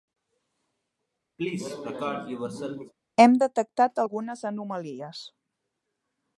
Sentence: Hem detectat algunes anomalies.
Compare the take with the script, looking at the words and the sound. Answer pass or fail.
fail